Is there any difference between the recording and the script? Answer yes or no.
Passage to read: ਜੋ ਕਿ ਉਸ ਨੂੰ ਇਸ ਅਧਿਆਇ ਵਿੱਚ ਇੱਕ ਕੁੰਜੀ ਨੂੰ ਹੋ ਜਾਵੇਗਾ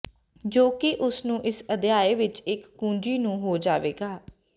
no